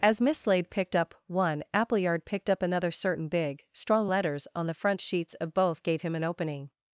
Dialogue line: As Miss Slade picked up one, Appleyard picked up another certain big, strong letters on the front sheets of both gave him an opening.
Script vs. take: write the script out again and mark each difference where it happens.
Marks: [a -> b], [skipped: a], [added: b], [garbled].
As Miss Slade picked up one, Appleyard picked up another certain big, strong letters on the front sheets of both gave him an opening.